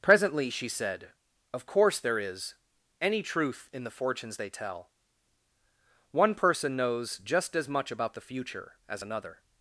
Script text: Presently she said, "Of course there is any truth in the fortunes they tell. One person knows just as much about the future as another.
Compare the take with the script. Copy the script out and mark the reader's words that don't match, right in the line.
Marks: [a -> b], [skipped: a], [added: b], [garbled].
Presently she said, "Of course there is any truth in the fortunes they tell. One person knows just as much about the future as another.